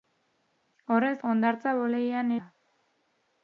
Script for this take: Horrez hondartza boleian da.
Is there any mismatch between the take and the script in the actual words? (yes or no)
no